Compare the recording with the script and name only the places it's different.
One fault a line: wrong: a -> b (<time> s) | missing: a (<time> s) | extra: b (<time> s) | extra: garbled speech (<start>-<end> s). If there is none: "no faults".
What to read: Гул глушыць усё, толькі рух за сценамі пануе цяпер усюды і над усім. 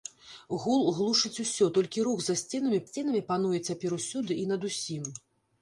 extra: сценамі (2.9 s)